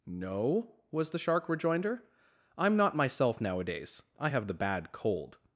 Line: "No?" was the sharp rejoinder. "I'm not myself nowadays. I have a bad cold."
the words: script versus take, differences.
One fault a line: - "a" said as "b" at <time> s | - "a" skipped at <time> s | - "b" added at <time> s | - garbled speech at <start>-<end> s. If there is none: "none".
- "sharp" said as "shark" at 1.2 s
- "a" said as "the" at 4.5 s